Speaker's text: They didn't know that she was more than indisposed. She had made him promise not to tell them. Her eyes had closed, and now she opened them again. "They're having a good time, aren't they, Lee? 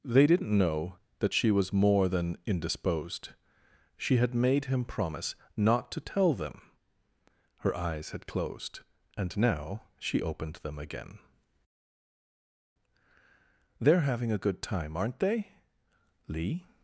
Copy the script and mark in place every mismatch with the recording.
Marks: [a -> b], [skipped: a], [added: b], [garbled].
They didn't know that she was more than indisposed. She had made him promise not to tell them. Her eyes had closed, and now she opened them again. "They're having a good time, aren't they, Lee?